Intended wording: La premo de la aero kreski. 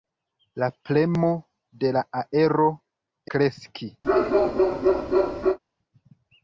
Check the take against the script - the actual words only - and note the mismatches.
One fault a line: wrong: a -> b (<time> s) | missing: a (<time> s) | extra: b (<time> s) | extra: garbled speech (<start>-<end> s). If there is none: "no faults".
no faults